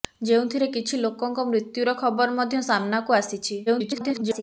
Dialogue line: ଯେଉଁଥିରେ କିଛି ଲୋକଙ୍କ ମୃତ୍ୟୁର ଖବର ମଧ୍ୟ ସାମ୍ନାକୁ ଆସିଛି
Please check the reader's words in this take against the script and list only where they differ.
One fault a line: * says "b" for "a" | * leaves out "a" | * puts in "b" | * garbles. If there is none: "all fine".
* garbles